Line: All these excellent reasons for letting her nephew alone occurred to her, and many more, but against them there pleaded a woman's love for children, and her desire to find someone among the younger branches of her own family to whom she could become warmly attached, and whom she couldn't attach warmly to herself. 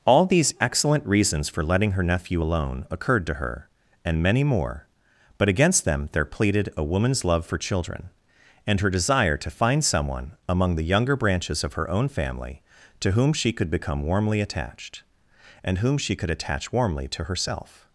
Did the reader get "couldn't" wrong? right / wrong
wrong